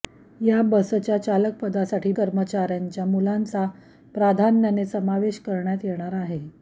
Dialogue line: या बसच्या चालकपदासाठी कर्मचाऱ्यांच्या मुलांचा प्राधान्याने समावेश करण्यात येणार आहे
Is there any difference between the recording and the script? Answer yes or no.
no